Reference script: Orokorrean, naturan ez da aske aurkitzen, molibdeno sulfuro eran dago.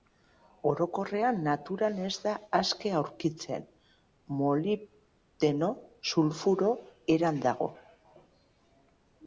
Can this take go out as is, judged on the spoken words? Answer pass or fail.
pass